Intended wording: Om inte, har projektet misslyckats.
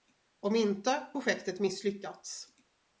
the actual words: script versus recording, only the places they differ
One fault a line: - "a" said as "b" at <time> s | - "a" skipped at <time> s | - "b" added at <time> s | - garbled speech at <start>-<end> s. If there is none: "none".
- "har" skipped at 1.1 s